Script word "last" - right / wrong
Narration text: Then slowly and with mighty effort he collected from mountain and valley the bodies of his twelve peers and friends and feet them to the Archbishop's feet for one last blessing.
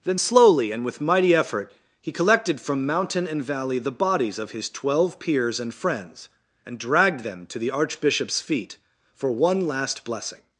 right